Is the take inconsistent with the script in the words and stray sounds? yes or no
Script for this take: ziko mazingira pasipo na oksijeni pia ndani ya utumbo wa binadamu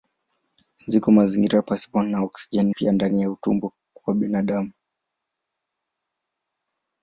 no